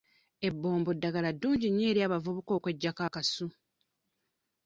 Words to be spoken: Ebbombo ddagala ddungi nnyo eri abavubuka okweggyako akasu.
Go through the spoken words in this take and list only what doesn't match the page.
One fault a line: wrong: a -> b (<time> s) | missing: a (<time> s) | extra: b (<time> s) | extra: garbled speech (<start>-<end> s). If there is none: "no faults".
no faults